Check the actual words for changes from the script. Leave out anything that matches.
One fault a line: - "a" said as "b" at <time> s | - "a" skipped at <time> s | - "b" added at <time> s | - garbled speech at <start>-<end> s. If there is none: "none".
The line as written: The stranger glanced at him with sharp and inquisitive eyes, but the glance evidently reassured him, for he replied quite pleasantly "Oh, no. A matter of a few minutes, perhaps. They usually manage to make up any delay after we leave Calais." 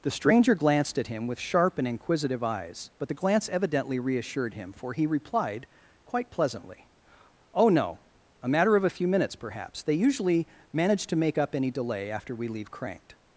- "Calais" said as "Cranked" at 12.7 s